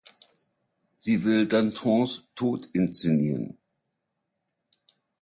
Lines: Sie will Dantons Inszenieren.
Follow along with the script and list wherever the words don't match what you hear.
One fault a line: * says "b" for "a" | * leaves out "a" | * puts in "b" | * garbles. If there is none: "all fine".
* puts in "Tod"